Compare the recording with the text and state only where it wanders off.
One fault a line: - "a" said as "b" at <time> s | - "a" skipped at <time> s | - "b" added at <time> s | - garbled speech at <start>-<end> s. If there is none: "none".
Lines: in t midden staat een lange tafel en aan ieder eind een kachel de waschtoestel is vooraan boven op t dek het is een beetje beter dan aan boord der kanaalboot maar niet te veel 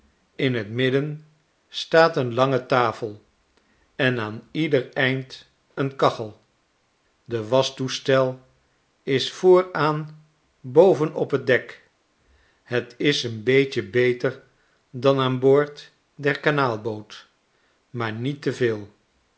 none